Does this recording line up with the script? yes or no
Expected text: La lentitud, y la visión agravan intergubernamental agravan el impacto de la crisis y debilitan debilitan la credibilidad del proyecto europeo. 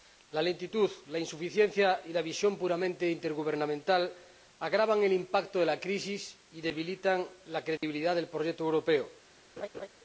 no